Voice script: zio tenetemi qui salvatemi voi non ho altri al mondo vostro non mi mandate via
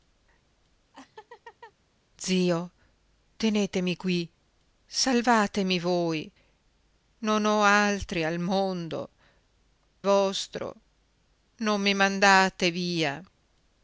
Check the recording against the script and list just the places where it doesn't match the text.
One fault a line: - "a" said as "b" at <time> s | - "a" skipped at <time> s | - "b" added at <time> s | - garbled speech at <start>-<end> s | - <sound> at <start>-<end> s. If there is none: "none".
- laugh at 0.9-1.7 s